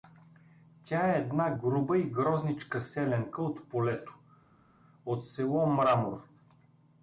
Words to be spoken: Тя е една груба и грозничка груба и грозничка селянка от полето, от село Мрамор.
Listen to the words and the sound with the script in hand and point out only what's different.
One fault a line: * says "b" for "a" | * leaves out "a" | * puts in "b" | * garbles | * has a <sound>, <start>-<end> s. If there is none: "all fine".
* leaves out "груба и грозничка"